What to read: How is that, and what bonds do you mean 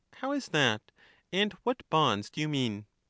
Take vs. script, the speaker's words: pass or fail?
pass